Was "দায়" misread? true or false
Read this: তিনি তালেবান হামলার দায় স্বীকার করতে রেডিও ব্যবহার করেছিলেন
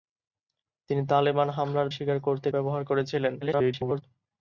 true